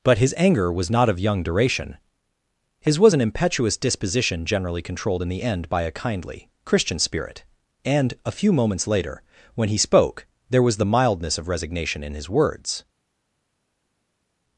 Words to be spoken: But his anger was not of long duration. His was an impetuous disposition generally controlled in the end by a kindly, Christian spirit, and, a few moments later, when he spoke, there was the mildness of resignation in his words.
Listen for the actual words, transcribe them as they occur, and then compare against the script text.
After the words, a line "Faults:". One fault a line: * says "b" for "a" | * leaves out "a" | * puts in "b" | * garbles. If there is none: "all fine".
But his anger was not of young duration. His was an impetuous disposition generally controlled in the end by a kindly, Christian spirit, and, a few moments later, when he spoke, there was the mildness of resignation in his words.
Faults:
* says "young" for "long"